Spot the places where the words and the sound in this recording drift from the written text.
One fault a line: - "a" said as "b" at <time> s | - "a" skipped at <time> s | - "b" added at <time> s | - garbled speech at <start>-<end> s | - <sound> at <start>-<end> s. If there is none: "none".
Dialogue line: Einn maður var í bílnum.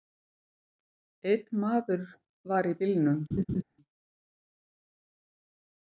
- laugh at 3.3-3.6 s